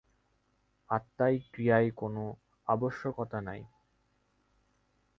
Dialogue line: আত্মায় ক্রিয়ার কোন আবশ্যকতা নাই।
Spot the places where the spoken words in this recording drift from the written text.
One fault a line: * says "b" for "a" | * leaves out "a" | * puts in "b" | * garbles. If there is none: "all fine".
all fine